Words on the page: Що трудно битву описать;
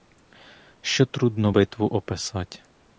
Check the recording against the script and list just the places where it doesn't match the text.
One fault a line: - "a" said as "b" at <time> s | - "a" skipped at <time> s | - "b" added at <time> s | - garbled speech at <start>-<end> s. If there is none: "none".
none